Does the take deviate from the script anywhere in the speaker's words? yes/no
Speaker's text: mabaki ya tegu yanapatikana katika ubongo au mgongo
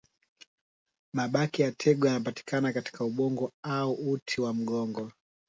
yes